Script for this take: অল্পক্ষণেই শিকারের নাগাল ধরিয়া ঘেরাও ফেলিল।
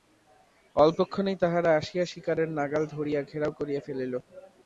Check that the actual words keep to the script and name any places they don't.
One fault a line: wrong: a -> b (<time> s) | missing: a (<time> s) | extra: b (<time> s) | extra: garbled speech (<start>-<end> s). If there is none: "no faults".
extra: তাহারা আসিয়া (1.4 s)
extra: করিয়া (3.6 s)